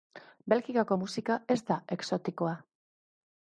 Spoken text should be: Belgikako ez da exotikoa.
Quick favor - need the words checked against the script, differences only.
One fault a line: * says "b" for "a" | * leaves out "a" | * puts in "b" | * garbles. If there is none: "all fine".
* puts in "musika"